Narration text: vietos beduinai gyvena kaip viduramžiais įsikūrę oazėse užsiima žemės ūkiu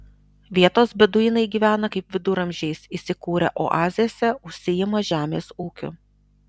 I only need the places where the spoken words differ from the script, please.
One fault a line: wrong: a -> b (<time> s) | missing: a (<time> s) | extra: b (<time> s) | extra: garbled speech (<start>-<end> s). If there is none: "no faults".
no faults